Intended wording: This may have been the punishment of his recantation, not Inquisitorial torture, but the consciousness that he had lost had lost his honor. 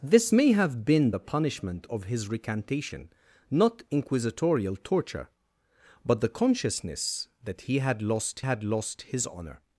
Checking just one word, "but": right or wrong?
right